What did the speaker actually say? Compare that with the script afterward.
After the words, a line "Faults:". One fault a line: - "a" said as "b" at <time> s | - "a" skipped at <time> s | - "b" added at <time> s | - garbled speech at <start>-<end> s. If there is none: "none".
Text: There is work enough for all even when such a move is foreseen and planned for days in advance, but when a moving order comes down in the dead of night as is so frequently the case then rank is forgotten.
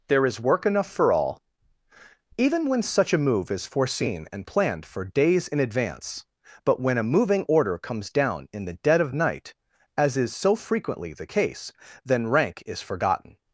There is work enough for all even when such a move is foreseen and planned for days in advance, but when a moving order comes down in the dead of night as is so frequently the case then rank is forgotten.
Faults:
none